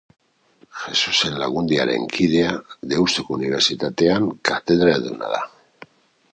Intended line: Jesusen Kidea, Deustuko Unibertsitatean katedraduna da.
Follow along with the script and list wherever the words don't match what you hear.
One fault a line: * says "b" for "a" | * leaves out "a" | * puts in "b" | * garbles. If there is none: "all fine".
* puts in "Lagundiaren"